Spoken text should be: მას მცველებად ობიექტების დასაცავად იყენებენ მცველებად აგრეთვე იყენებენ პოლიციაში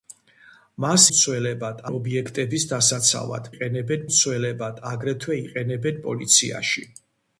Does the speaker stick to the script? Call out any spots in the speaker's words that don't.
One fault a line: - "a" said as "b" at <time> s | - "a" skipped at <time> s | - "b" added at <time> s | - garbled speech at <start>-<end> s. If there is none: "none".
none